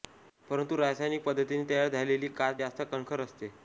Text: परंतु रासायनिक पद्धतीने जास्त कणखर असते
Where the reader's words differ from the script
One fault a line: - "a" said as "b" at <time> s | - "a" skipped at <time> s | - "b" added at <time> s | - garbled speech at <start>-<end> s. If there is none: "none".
- "तयार झालेली काच" added at 1.7 s